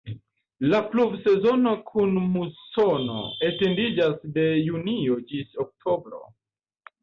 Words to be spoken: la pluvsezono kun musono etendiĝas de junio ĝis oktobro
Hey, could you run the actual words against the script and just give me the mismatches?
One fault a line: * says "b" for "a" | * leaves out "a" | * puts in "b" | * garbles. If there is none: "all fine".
all fine